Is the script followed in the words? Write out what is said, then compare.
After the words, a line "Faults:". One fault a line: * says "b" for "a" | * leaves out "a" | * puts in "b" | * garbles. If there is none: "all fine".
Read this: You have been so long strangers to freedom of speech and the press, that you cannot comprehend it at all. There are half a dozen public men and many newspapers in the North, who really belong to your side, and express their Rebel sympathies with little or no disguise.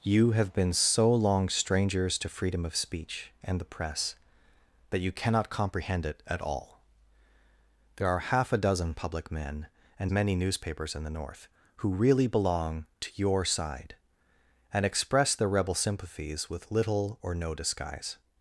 You have been so long strangers to freedom of speech and the press, that you cannot comprehend it at all. There are half a dozen public men and many newspapers in the North, who really belong to your side, and express their Rebel sympathies with little or no disguise.
Faults:
all fine